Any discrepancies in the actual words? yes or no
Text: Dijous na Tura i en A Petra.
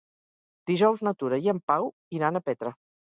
yes